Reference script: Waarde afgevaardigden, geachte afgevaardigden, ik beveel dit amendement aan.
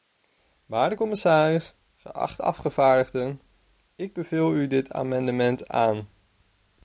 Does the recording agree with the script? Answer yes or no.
no